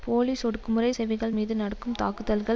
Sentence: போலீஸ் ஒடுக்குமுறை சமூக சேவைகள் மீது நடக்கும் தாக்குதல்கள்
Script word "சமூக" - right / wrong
wrong